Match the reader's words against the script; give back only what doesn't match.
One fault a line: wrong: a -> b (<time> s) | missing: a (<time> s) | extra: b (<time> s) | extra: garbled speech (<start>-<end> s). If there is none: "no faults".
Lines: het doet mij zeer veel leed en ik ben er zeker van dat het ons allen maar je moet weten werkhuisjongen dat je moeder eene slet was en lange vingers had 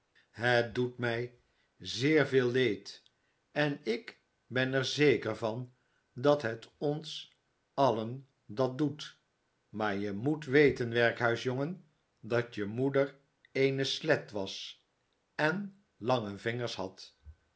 extra: dat doet (8.4 s)